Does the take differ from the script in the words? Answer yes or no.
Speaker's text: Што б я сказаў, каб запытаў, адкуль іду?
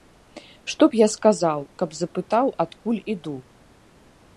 no